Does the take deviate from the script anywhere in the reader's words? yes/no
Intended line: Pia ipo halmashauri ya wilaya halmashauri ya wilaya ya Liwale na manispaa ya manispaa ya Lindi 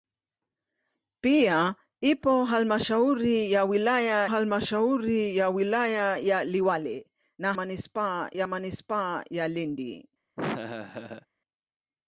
no